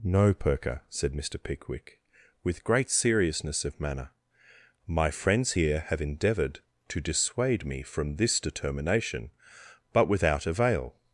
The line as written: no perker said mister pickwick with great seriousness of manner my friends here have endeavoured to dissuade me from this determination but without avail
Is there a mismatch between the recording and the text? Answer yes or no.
no